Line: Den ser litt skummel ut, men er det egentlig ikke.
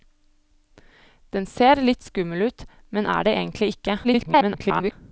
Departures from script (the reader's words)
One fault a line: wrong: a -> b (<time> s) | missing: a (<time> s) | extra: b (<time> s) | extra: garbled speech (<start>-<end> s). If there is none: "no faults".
extra: garbled speech (4.0-4.9 s)